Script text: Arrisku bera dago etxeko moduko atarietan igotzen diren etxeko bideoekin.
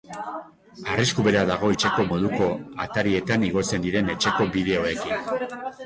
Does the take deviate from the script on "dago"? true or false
false